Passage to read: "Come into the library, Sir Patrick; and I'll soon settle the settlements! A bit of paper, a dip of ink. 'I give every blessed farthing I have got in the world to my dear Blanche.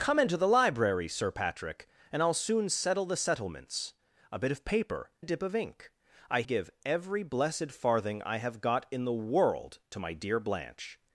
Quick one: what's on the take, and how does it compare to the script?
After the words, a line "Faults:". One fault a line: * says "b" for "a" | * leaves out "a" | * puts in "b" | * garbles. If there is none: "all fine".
"Come into the library, Sir Patrick; and I'll soon settle the settlements! A bit of paper, a dip of ink. 'I give every blessed farthing I have got in the world to my dear Blanche.
Faults:
all fine